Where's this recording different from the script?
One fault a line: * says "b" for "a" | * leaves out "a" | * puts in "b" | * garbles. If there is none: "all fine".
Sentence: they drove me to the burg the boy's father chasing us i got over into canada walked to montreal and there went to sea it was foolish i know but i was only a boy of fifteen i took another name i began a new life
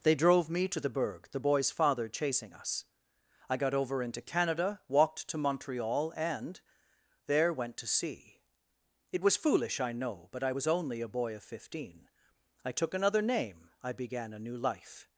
all fine